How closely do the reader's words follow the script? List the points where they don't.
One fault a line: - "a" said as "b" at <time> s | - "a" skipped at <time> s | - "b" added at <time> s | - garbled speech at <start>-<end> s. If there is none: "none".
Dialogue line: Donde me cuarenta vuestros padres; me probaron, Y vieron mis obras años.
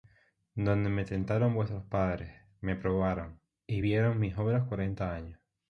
- "cuarenta" said as "tentaron" at 1.1 s
- "cuarenta" added at 4.7 s